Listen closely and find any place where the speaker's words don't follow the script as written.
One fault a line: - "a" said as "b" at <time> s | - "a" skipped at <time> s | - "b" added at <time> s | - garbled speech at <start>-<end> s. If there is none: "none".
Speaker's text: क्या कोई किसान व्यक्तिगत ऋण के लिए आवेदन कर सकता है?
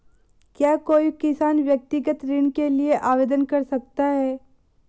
none